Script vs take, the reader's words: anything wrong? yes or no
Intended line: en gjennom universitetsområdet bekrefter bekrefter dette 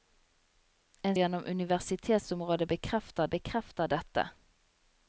no